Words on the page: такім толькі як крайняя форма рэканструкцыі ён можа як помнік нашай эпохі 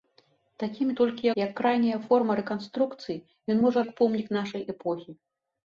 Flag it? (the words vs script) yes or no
no